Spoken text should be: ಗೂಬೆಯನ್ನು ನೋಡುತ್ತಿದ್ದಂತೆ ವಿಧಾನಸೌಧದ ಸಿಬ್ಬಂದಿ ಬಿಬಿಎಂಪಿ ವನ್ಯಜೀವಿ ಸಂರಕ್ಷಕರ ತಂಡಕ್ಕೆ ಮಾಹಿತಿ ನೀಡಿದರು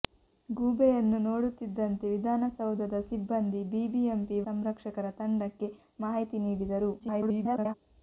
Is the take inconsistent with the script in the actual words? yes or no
yes